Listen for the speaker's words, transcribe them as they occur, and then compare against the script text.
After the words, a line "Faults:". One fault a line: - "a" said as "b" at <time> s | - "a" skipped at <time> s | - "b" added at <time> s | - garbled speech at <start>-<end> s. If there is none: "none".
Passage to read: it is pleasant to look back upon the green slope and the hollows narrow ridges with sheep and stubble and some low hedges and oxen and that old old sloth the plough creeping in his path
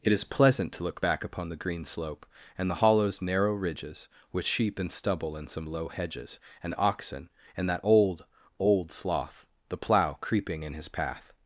it is pleasant to look back upon the green slope and the hollows narrow ridges with sheep and stubble and some low hedges and oxen and that old old sloth the plough creeping in his path
Faults:
none